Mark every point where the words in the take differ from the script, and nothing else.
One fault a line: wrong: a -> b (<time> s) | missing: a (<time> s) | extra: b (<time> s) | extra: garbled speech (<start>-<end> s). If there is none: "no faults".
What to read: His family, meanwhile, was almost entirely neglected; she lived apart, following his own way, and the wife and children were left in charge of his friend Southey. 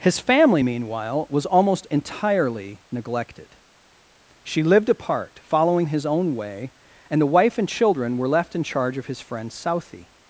no faults